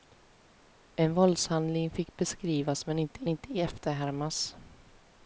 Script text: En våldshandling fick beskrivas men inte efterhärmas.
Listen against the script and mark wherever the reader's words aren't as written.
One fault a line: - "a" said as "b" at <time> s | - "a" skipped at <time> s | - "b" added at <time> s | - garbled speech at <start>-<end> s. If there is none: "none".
- "inte" added at 3.3 s